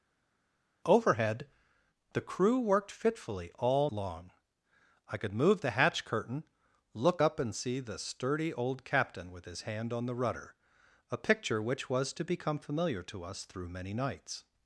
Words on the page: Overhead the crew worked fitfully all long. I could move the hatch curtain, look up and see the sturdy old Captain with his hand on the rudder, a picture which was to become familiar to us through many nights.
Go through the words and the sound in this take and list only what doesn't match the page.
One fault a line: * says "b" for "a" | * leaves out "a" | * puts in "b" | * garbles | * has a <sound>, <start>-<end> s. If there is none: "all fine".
all fine